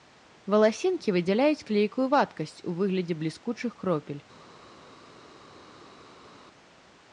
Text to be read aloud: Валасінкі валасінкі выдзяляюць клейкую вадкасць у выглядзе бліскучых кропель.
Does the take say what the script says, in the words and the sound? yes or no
no